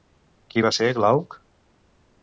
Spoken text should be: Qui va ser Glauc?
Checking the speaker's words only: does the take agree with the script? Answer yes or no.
yes